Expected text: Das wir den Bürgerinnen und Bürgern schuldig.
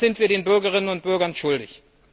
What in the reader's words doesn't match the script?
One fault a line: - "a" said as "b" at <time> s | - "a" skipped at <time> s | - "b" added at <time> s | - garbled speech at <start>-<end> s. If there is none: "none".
- "sind" added at 0.1 s